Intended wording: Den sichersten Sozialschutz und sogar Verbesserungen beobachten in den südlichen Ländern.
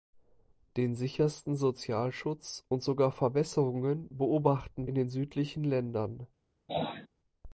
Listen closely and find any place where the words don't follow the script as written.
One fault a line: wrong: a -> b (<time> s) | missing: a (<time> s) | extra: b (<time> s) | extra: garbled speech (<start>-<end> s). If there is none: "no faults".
no faults